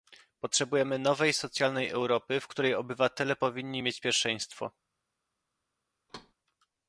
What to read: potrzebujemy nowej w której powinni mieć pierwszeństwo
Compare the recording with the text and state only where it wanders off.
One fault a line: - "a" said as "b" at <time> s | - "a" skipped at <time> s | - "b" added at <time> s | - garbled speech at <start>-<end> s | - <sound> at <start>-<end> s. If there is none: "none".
- "socjalnej europy" added at 1.3 s
- "obywatele" added at 2.8 s
- thud at 6.1-6.3 s